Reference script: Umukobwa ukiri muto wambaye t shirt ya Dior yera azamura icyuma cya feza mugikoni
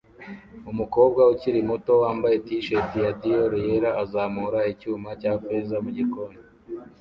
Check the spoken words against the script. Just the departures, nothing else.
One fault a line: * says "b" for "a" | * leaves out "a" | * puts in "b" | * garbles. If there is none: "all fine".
all fine